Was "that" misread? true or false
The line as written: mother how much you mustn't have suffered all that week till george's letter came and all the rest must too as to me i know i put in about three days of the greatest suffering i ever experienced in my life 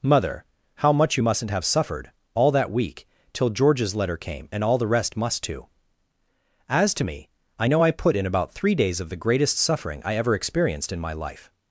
false